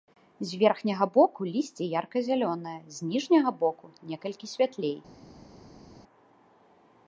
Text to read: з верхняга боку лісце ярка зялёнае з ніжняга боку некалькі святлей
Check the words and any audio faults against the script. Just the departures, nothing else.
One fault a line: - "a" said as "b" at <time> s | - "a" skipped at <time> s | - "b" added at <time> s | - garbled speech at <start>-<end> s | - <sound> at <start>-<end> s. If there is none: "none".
none